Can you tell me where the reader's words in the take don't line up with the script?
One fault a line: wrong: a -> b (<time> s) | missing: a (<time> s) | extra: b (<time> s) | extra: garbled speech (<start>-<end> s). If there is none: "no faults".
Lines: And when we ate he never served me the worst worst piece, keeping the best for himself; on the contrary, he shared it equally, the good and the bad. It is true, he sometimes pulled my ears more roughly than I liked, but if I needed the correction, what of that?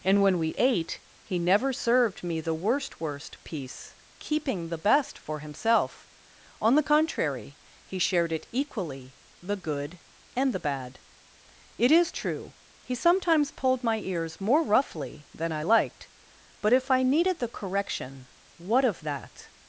no faults